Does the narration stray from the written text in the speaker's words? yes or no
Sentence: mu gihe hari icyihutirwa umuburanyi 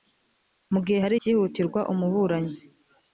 no